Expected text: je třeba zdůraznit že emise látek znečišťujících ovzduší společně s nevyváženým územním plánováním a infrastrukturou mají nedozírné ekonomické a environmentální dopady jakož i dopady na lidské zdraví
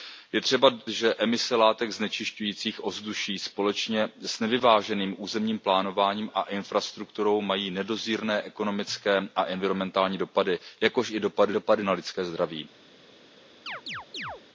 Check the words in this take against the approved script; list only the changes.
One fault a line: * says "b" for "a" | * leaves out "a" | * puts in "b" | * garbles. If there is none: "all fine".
* leaves out "zdůraznit"
* puts in "dopady"